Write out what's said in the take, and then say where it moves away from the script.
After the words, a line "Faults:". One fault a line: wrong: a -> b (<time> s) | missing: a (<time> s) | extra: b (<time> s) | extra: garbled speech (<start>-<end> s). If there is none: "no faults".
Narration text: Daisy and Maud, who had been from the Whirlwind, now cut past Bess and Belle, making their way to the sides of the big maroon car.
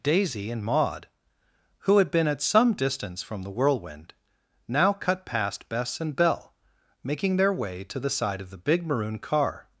Daisy and Maud, who had been at some distance from the Whirlwind, now cut past Bess and Belle, making their way to the side of the big maroon car.
Faults:
extra: at some distance (2.3 s)
wrong: sides -> side (8.1 s)